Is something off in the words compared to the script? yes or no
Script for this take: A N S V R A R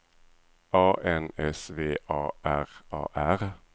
yes